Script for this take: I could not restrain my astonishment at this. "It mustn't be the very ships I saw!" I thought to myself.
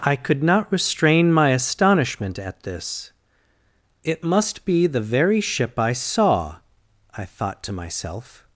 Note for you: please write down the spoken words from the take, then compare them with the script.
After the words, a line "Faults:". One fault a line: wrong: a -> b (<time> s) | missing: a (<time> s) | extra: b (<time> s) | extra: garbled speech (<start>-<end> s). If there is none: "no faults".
I could not restrain my astonishment at this. "It must be the very ship I saw!" I thought to myself.
Faults:
wrong: mustn't -> must (4.2 s)
wrong: ships -> ship (5.4 s)